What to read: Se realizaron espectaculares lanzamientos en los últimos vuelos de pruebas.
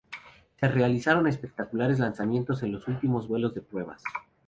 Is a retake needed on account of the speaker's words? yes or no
no